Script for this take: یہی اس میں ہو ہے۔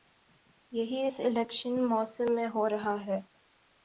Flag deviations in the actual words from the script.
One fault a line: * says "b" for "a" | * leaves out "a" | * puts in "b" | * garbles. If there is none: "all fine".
* puts in "الیکشن موسم"
* puts in "رہا"